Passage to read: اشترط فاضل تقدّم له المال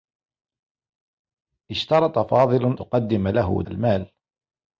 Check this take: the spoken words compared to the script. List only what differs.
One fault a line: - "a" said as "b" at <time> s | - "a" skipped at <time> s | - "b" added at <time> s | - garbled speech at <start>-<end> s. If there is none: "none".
none